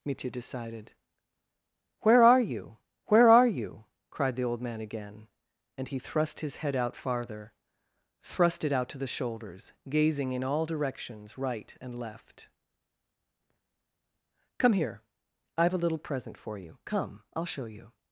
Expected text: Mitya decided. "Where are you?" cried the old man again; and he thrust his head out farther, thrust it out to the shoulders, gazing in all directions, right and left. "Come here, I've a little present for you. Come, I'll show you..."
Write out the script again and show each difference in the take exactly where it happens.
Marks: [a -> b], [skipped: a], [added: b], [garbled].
Mitya decided. "Where are you?" [added: where are you] cried the old man again; and he thrust his head out farther, thrust it out to the shoulders, gazing in all directions, right and left. "Come here, I've a little present for you. Come, I'll show you..."